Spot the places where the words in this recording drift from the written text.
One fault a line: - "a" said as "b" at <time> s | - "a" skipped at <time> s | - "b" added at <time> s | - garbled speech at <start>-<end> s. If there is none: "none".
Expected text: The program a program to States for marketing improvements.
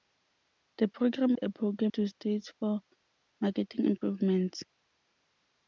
none